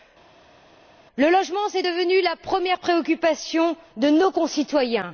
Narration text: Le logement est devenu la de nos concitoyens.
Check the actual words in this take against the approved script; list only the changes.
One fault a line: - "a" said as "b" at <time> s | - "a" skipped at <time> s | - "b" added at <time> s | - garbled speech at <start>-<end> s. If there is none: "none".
- "première préoccupation" added at 2.4 s